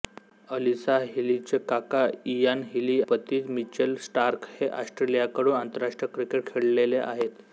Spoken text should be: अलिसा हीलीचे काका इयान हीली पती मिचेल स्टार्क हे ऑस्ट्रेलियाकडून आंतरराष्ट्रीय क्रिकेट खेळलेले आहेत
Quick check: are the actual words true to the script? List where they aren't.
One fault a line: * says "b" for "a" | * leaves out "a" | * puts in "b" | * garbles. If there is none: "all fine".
all fine